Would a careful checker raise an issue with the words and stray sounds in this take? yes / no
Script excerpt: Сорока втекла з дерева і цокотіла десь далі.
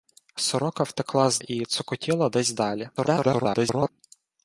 yes